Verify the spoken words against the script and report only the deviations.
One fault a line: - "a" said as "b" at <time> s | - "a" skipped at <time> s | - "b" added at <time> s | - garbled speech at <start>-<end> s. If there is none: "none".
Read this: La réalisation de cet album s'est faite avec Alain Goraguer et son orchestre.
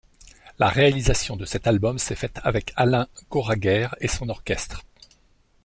none